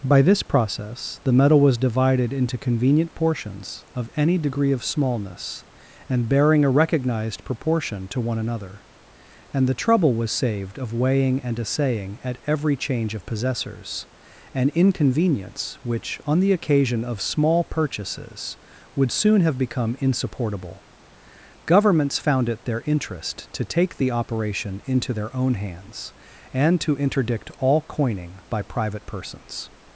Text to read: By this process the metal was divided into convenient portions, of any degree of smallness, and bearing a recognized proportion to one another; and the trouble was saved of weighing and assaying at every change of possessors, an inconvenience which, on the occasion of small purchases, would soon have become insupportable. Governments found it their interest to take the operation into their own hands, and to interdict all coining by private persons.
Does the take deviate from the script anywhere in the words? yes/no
no